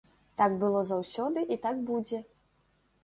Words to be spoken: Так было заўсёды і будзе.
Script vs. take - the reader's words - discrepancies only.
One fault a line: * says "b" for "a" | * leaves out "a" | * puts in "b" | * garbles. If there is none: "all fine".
* puts in "так"